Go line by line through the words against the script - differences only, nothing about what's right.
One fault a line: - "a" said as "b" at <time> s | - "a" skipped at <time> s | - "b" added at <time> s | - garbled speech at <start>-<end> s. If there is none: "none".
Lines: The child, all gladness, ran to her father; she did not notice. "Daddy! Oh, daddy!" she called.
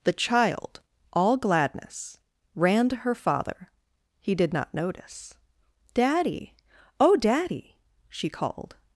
- "she" said as "he" at 4.2 s